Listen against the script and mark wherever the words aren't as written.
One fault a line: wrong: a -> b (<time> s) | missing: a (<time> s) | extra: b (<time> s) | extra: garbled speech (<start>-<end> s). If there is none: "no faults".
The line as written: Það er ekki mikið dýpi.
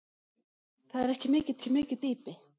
extra: ekki mikið (1.6 s)